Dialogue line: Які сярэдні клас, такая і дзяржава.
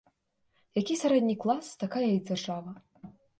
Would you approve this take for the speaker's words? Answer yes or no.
yes